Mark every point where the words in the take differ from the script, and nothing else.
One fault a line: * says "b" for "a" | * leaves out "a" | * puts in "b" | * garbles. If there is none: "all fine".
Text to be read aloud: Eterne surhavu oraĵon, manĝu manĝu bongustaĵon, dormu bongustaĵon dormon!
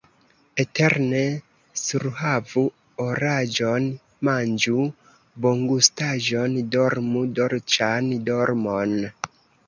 * leaves out "manĝu"
* says "dolĉan" for "bongustaĵon"